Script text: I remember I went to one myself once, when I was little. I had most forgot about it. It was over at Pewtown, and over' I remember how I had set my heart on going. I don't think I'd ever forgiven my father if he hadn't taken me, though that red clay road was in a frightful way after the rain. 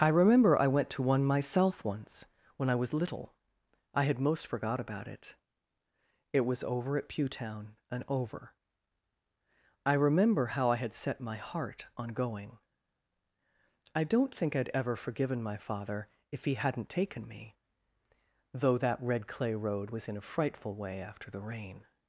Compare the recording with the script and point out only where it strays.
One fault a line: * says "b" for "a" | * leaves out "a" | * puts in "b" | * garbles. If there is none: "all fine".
all fine